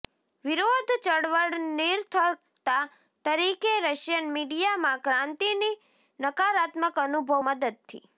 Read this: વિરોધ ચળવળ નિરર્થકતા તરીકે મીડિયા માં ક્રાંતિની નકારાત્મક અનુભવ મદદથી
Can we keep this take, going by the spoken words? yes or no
no